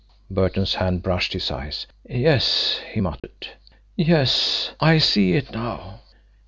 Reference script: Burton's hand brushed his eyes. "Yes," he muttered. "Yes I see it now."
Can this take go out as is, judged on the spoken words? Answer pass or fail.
pass